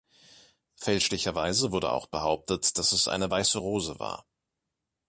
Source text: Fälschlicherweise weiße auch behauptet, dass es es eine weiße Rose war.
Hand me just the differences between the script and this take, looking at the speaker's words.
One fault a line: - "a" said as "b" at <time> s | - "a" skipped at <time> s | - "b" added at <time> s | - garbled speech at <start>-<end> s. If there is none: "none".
- "weiße" said as "wurde" at 1.7 s
- "es" skipped at 3.1 s